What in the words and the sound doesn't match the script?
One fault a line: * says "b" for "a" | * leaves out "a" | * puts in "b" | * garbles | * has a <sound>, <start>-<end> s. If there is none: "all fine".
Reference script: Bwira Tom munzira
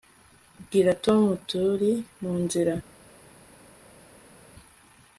* puts in "turi"